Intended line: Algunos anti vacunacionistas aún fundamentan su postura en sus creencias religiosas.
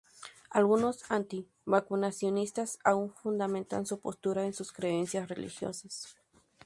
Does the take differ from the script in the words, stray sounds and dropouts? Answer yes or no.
no